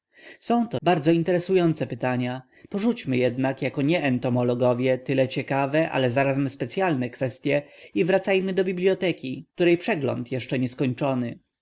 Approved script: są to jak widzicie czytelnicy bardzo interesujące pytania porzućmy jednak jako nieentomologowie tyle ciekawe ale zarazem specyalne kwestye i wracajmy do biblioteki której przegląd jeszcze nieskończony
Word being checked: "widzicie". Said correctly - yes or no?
no